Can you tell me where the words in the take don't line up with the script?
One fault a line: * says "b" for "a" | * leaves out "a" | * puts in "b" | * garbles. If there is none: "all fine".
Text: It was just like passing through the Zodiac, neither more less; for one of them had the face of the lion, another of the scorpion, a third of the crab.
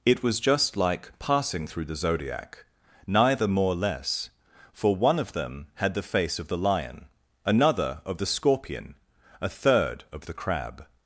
all fine